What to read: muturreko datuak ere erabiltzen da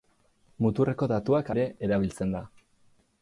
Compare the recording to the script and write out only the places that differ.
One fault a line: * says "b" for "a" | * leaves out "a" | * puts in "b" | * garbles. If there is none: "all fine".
all fine